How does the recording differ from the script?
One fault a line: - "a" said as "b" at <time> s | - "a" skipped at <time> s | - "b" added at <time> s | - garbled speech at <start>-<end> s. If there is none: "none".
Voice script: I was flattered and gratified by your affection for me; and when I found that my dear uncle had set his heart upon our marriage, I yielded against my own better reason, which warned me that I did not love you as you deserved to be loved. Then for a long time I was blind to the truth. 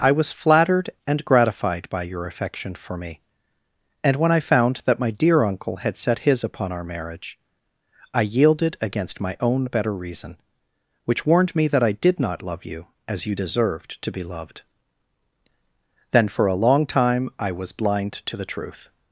- "heart" skipped at 6.4 s